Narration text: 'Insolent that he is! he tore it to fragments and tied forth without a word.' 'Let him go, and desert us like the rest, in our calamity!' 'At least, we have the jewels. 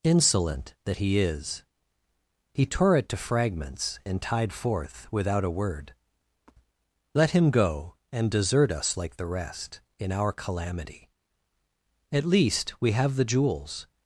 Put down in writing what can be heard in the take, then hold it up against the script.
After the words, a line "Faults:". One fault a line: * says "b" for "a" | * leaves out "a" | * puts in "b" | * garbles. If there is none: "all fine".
'Insolent that he is! he tore it to fragments and tied forth without a word.' 'Let him go, and desert us like the rest, in our calamity!' 'At least, we have the jewels.
Faults:
all fine